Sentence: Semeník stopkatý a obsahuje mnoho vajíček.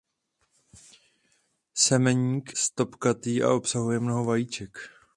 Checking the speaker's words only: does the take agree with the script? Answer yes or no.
yes